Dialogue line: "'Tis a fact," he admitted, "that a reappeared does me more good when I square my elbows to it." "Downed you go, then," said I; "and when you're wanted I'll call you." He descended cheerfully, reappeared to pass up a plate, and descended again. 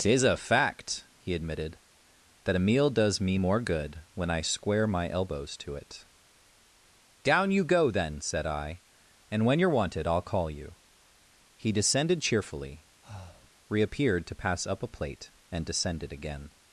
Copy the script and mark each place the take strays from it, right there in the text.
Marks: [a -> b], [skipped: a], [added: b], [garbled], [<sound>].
"'Tis a fact," he admitted, "that a [reappeared -> meal] does me more good when I square my elbows to it." ["Downed -> Down] you go, then," said I; "and when you're wanted I'll call you." He descended cheerfully, [breath] reappeared to pass up a plate, and descended again.